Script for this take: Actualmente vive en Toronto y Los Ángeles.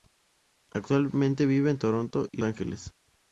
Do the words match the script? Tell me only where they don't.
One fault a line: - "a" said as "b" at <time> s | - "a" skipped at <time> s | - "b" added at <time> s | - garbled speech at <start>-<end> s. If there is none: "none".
- "Los" skipped at 2.4 s